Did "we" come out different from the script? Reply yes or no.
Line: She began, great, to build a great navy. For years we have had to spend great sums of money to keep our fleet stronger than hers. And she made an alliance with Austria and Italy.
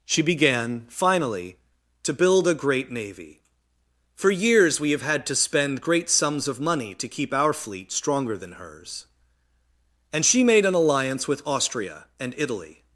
no